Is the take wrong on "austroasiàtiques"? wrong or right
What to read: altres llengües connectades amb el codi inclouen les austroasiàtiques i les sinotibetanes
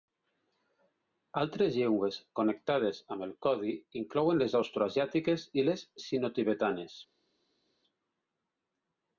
right